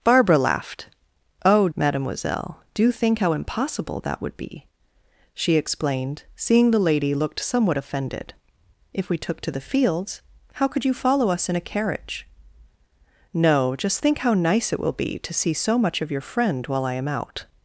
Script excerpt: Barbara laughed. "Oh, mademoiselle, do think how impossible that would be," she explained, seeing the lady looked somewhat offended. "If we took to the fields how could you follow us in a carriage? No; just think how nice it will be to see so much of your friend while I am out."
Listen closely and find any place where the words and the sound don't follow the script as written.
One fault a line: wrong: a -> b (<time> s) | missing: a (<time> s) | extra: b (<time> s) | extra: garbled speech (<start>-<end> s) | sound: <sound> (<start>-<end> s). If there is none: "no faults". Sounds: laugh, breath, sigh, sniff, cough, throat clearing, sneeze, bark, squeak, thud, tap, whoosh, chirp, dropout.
no faults